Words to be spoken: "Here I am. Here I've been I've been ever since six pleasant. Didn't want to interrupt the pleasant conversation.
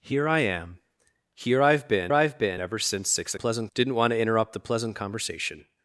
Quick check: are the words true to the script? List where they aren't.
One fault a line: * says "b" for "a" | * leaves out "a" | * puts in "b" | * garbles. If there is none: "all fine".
all fine